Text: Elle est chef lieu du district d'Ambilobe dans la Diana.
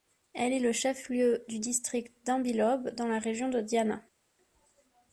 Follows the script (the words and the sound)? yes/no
no